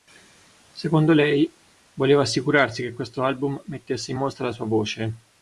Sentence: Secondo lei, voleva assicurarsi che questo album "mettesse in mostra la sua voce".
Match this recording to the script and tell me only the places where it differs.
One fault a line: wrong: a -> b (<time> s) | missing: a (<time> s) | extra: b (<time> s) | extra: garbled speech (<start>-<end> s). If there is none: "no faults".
no faults